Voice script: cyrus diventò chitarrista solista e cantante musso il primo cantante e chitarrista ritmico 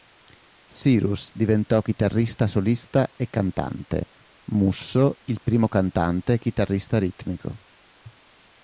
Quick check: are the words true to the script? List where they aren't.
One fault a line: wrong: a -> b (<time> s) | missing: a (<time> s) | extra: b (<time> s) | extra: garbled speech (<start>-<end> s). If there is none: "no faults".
no faults